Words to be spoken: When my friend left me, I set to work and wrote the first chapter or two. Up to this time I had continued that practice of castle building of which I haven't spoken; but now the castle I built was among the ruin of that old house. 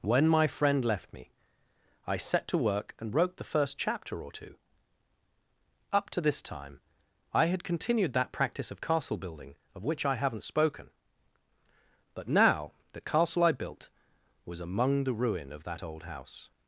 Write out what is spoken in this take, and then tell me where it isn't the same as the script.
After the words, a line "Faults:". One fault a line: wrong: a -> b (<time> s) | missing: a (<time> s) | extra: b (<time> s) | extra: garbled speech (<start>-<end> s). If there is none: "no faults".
When my friend left me, I set to work and wrote the first chapter or two. Up to this time I had continued that practice of castle building of which I haven't spoken; but now the castle I built was among the ruin of that old house.
Faults:
no faults